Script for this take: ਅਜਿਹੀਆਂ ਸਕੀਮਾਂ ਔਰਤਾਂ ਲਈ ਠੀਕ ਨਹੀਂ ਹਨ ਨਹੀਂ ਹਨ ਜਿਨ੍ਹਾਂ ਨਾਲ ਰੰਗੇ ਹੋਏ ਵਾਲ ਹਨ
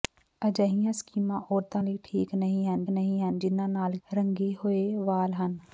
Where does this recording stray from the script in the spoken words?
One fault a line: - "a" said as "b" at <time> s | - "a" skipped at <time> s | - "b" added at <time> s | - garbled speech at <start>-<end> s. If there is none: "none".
none